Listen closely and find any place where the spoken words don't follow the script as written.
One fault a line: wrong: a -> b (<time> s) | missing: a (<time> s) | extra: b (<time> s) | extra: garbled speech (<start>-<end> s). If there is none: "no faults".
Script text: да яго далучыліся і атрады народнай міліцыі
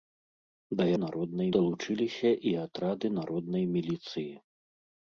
wrong: яго -> народнай (1.0 s)